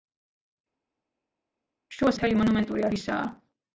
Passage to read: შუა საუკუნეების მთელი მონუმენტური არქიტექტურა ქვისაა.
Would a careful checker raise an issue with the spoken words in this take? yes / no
yes